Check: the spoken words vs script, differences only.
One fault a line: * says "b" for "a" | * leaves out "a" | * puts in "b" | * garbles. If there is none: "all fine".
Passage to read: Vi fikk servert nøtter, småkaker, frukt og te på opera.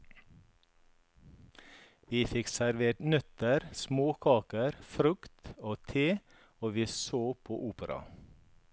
* puts in "og vi så"